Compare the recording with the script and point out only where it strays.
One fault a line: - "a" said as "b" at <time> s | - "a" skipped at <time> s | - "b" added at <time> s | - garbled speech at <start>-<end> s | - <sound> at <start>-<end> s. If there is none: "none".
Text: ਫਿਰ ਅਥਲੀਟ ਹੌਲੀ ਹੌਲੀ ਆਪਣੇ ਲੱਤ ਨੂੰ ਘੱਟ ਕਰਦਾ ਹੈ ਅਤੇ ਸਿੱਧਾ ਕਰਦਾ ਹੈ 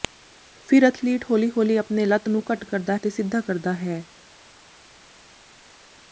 - "ਹੈ" skipped at 3.0 s